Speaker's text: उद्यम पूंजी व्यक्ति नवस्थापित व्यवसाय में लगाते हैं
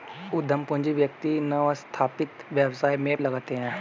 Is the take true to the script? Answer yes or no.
yes